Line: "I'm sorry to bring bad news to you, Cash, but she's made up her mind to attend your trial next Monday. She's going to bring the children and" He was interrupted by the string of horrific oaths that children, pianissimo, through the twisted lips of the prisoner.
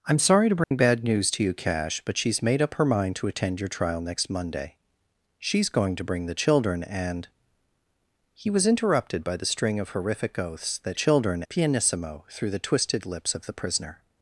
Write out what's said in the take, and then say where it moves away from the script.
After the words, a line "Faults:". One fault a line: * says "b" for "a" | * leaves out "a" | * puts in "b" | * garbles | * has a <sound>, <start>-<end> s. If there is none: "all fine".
"I'm sorry to bring bad news to you, Cash, but she's made up her mind to attend your trial next Monday. She's going to bring the children and" He was interrupted by the string of horrific oaths that children, pianissimo, through the twisted lips of the prisoner.
Faults:
* has a dropout, 0.6-0.7 s